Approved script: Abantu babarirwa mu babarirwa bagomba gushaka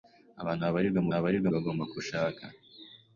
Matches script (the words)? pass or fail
pass